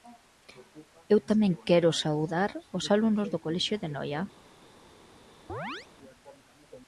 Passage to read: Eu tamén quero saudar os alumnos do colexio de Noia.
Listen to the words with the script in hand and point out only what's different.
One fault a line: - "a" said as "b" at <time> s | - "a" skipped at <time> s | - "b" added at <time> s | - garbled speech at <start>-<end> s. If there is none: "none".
none